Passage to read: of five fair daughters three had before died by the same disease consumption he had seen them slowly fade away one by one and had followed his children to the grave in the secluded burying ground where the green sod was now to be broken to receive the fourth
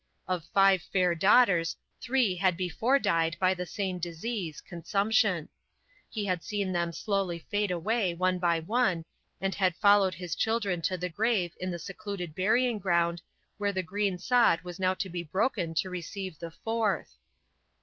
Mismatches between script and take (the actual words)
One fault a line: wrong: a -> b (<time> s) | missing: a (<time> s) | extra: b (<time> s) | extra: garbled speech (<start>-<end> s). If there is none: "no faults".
no faults